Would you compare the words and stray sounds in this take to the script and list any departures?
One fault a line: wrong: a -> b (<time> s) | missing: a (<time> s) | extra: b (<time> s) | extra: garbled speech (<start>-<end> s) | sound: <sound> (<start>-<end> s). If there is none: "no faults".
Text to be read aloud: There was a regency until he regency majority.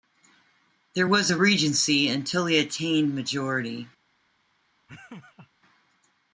wrong: regency -> attained (2.6 s)
sound: laugh (4.9-5.5 s)